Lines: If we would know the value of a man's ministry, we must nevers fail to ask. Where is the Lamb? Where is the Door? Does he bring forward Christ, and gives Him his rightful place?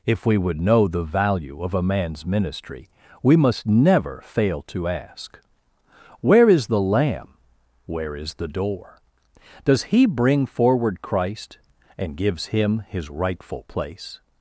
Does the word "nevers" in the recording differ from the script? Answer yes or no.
yes